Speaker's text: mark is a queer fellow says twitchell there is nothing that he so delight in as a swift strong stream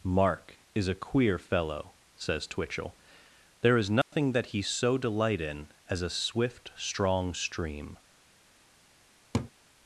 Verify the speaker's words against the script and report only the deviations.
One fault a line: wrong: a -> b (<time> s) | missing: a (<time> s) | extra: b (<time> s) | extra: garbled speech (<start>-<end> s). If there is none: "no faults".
no faults